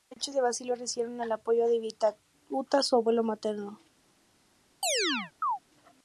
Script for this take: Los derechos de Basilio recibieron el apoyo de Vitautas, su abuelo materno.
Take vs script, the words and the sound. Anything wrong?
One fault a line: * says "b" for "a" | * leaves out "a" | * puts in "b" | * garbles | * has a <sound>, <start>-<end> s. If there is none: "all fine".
* has a chirp, 4.8-5.6 s